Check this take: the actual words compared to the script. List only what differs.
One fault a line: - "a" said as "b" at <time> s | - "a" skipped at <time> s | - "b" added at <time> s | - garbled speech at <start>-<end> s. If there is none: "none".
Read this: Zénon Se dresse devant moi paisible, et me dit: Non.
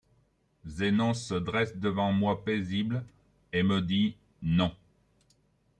none